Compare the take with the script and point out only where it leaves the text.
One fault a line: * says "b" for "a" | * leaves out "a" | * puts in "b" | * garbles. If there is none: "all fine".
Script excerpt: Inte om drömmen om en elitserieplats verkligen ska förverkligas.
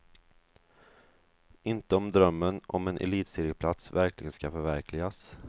all fine